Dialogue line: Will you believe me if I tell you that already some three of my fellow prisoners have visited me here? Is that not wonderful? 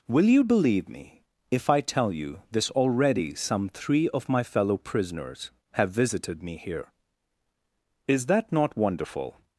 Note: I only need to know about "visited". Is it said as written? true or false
true